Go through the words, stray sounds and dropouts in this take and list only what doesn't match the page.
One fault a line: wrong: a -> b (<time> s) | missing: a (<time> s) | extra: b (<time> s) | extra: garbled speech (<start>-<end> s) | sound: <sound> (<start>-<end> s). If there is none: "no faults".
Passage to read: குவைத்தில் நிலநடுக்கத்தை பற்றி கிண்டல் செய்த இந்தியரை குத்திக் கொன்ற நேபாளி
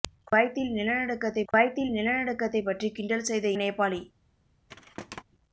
extra: குவைத்தில் நிலநடுக்கத்தை (1.5 s)
missing: இந்தியரை குத்திக் கொன்ற (3.5 s)
sound: thud (4.7-5.2 s)